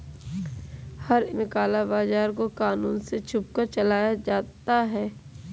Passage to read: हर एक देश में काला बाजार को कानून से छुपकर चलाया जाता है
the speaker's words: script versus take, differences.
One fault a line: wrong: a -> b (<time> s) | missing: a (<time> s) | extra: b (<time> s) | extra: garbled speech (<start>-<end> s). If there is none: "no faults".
missing: एक देश (1.2 s)